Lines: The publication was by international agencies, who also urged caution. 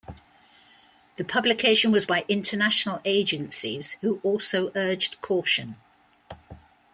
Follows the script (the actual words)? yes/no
yes